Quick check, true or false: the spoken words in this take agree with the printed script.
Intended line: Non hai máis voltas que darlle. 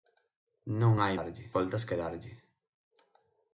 false